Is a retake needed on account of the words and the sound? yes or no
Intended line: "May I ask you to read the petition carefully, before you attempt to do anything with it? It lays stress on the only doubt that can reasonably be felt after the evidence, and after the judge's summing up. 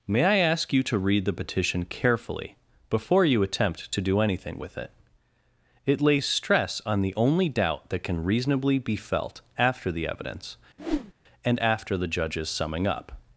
yes